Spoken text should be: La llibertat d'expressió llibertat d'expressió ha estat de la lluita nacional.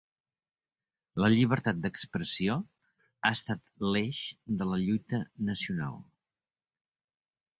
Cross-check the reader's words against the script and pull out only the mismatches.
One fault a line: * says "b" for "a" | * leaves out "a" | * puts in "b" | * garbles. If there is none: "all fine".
* leaves out "llibertat d'expressió"
* puts in "l'eix"